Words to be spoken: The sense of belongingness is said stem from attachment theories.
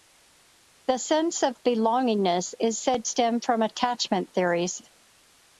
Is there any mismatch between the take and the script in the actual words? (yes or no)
no